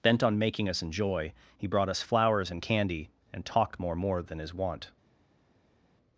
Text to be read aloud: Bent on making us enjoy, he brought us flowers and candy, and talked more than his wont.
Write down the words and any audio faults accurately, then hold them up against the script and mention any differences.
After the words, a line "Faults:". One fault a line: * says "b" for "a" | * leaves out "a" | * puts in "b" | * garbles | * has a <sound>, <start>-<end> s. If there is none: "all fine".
Bent on making us enjoy, he brought us flowers and candy, and talked more more than his wont.
Faults:
* puts in "more"